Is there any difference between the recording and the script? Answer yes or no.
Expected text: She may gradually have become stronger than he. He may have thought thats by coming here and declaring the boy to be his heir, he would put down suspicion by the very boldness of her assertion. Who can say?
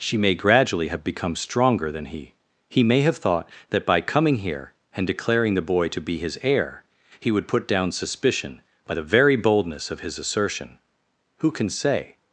yes